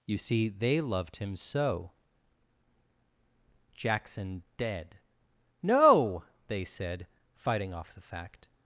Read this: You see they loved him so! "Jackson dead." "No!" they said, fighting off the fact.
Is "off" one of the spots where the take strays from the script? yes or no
no